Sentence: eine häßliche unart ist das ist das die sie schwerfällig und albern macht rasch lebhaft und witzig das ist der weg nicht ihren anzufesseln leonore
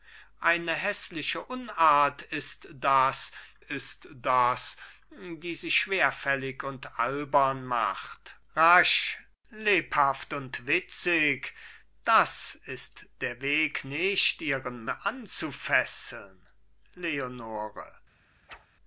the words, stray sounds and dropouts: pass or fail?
fail